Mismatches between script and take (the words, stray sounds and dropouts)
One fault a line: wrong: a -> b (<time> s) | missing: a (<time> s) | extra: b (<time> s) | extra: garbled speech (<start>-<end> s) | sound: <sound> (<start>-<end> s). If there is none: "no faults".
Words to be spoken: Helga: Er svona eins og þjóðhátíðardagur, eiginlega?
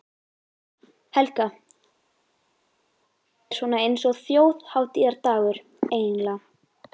no faults